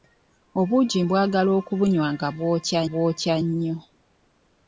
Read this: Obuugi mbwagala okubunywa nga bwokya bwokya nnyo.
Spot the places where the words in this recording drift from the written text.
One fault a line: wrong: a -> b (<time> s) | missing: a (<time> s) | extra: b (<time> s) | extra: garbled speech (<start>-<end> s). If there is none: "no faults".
no faults